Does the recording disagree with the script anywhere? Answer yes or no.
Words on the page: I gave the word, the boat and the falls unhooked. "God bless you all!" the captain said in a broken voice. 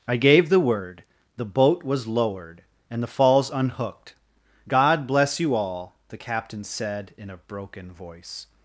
yes